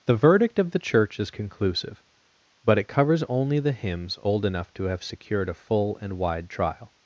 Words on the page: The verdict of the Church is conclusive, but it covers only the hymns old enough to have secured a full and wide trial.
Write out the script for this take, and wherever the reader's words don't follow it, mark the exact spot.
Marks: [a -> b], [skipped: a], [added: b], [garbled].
The verdict of the Church is conclusive, but it covers only the hymns old enough to have secured a full and wide trial.